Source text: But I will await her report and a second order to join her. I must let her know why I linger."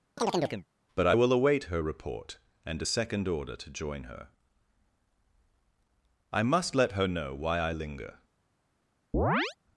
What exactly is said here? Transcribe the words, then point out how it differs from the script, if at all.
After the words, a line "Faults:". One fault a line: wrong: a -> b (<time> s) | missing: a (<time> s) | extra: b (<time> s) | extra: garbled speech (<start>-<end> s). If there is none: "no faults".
But I will await her report and a second order to join her. I must let her know why I linger."
Faults:
no faults